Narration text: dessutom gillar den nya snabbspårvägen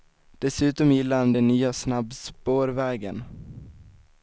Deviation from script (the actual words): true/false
true